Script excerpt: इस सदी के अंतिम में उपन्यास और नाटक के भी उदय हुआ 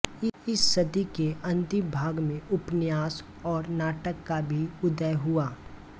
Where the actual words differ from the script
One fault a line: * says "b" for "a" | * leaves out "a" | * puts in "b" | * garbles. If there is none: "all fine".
* puts in "भाग"
* says "का" for "के"